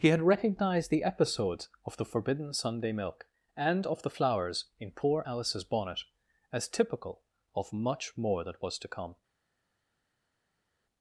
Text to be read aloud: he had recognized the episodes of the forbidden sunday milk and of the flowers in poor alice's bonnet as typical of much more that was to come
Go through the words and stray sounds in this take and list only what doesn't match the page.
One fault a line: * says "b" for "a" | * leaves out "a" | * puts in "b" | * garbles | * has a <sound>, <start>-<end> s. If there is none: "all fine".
all fine